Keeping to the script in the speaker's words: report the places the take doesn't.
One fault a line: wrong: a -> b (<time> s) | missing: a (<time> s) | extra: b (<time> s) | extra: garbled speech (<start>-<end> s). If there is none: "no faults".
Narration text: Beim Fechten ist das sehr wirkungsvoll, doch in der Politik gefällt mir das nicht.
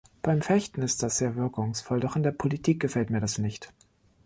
no faults